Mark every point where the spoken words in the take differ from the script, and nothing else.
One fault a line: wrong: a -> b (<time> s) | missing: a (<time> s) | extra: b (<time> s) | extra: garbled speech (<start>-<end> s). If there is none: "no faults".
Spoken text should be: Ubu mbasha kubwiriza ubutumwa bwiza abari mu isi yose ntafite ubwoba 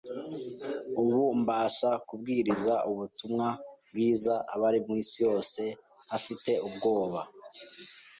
no faults